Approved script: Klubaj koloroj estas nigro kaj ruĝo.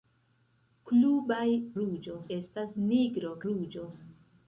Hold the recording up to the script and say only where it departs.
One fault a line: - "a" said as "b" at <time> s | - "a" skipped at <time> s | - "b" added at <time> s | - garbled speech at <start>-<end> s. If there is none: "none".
- "koloroj" said as "ruĝo" at 1.8 s
- "kaj" skipped at 3.4 s